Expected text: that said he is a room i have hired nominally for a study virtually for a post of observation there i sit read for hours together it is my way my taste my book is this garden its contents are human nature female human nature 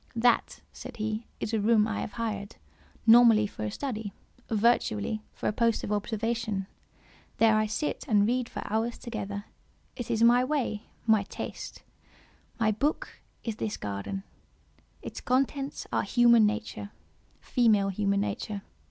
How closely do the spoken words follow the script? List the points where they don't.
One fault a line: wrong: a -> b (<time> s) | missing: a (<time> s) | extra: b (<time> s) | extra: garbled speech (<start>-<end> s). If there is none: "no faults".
extra: and (8.1 s)